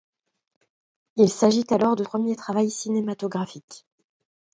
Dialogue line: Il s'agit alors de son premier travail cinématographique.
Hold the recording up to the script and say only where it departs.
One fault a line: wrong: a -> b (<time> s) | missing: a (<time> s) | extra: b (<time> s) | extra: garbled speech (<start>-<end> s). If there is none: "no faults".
missing: son (2.0 s)